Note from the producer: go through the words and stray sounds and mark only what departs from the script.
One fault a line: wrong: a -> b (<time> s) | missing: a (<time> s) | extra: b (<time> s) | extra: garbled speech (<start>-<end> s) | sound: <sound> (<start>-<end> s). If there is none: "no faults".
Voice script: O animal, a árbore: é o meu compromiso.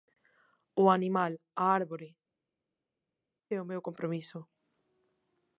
no faults